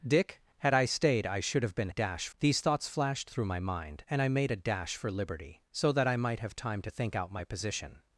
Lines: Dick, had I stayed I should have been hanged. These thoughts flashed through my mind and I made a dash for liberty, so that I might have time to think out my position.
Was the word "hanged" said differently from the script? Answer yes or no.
yes